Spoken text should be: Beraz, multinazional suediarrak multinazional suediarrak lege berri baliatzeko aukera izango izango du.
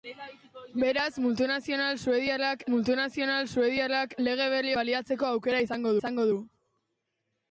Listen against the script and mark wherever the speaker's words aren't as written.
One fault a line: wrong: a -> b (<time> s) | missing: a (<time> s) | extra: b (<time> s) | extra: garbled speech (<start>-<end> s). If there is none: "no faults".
no faults